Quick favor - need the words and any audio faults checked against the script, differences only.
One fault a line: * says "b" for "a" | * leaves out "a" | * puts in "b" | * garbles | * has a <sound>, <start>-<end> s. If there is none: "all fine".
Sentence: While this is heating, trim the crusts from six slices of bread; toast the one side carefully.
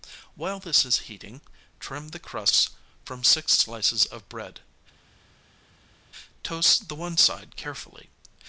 all fine